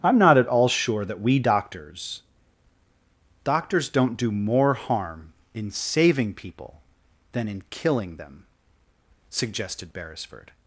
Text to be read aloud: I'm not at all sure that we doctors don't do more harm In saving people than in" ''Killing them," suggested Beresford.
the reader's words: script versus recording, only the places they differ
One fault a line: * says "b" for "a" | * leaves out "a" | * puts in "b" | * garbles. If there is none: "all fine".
* puts in "doctors"